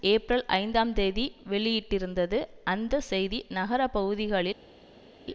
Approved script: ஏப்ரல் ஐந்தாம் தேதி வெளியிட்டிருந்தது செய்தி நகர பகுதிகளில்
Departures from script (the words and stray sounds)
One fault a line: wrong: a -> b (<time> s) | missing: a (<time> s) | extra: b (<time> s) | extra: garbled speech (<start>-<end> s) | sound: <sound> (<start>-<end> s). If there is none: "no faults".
extra: அந்த (2.6 s)